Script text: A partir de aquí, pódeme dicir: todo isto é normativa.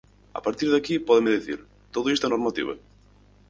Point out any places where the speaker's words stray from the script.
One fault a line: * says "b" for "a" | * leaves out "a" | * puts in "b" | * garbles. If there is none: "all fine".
all fine